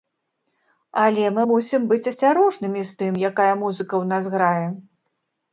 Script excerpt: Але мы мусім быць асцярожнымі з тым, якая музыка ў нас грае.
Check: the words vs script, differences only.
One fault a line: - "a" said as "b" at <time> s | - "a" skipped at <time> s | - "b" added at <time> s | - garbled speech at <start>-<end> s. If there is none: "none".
none